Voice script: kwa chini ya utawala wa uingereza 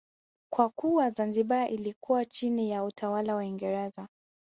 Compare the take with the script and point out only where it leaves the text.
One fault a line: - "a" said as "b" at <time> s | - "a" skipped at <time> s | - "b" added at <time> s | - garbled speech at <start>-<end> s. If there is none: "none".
- "kuwa zanzibar ilikuwa" added at 0.7 s